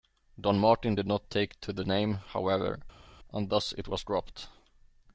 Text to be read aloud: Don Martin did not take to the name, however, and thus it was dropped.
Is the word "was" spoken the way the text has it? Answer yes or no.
yes